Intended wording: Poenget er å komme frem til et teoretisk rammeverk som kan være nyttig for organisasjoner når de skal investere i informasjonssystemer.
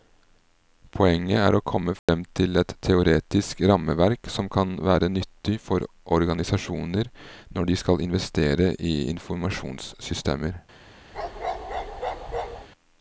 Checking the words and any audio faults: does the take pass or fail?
fail